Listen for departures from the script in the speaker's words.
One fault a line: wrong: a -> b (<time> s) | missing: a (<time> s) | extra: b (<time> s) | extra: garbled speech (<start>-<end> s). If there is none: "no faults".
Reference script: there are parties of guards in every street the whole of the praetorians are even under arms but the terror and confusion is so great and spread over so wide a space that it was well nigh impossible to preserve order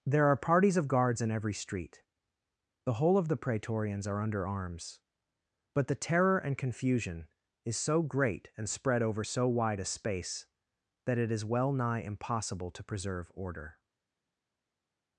missing: even (4.2 s)
wrong: was -> is (11.3 s)